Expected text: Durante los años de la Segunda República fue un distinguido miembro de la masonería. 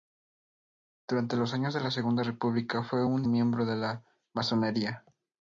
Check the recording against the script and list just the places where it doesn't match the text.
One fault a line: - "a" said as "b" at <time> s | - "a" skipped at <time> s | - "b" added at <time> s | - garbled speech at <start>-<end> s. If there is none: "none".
- "distinguido" skipped at 3.2 s